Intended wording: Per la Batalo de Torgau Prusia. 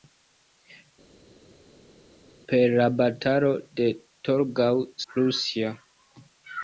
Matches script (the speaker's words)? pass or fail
pass